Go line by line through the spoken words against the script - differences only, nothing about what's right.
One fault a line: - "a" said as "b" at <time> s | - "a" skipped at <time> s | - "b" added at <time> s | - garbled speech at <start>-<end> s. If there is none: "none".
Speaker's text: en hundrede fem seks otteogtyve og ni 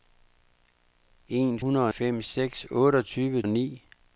none